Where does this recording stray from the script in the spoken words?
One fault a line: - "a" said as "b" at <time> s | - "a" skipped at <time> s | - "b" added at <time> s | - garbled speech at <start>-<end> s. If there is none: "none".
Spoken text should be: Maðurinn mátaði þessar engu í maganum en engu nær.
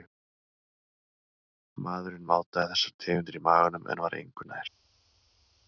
- "engu" said as "tegundir" at 3.0 s
- "var" added at 4.1 s